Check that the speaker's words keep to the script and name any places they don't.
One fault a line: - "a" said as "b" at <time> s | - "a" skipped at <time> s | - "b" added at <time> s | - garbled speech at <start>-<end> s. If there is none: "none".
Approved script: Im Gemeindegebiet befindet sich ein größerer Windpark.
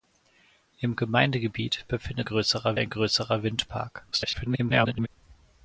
- "sich" said as "größerer" at 2.2 s
- garbled speech at 4.1-5.1 s